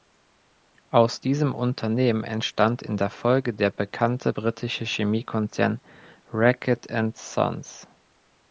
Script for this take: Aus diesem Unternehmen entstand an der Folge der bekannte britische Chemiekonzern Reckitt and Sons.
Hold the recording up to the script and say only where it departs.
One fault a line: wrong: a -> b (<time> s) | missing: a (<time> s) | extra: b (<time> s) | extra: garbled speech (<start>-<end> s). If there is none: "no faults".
wrong: an -> in (2.8 s)